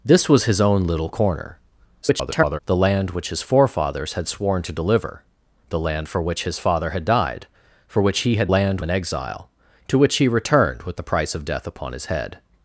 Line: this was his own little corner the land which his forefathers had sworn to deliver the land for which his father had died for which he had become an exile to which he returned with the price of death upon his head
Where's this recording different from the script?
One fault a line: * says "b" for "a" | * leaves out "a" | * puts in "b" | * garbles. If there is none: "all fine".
* garbles
* says "land" for "become"